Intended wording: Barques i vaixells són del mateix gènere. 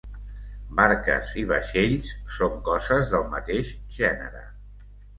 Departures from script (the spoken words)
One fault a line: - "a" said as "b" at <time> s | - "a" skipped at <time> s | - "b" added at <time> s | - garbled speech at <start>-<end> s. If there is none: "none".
- "coses" added at 2.7 s